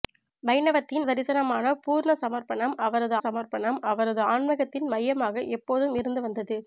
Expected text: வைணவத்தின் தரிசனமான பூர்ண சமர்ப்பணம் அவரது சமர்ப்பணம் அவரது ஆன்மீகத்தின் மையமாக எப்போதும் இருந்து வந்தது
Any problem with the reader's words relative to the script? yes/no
no